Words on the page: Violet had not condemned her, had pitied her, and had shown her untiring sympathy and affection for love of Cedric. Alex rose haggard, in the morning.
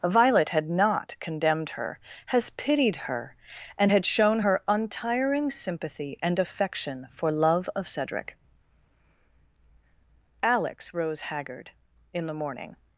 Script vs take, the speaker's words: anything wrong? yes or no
yes